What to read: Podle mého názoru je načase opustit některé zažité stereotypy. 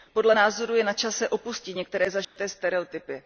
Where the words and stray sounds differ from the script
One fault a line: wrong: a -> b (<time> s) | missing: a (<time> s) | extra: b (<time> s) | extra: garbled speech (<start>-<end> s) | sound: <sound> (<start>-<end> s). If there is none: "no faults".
missing: mého (0.3 s)
sound: dropout (2.2-2.4 s)